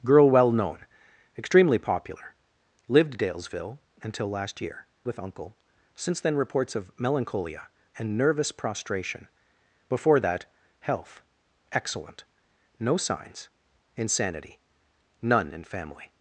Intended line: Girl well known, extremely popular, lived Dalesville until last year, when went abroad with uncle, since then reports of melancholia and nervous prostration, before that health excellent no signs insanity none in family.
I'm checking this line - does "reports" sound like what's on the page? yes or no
yes